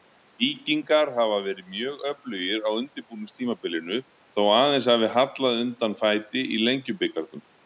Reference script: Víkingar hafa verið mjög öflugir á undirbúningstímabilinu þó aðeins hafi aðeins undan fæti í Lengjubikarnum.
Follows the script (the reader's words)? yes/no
no